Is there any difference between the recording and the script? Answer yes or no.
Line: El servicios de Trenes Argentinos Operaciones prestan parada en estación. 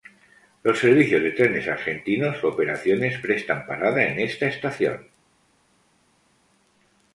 yes